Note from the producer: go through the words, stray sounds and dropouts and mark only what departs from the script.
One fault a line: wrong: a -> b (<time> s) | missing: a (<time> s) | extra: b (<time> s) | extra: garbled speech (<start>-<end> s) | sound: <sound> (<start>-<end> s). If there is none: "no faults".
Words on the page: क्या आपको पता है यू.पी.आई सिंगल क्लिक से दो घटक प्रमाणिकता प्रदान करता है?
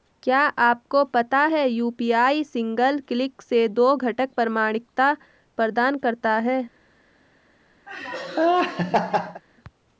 sound: laugh (7.9-9.4 s)